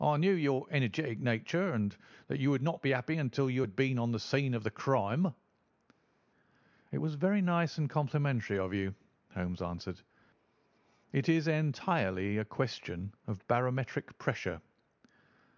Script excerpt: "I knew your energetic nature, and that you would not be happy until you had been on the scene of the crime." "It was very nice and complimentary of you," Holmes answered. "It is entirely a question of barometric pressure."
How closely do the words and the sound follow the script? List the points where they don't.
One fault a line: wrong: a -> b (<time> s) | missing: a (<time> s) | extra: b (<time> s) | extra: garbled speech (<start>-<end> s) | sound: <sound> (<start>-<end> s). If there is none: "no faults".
no faults